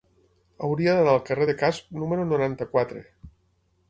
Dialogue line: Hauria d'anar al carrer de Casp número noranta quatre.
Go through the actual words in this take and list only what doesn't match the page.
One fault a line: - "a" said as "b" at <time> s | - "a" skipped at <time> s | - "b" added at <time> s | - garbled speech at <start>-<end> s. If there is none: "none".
none